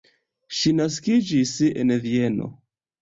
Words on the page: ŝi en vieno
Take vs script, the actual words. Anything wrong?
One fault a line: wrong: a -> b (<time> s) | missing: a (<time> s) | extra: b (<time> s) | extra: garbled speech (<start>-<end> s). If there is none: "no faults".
extra: naskiĝis (0.8 s)